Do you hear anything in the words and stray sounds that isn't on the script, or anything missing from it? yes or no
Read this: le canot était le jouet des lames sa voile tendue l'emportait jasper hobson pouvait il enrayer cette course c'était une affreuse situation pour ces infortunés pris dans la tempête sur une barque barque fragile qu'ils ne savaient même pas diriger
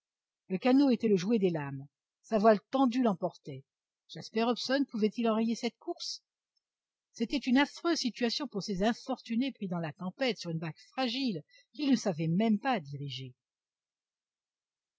yes